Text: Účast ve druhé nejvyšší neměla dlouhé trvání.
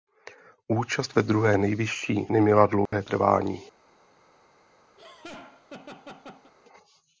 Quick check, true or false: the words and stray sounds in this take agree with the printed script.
false